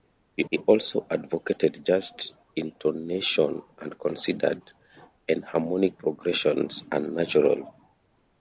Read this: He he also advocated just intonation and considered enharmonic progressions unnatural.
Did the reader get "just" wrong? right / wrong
right